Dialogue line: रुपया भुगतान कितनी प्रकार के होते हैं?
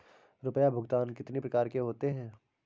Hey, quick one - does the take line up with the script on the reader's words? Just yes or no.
yes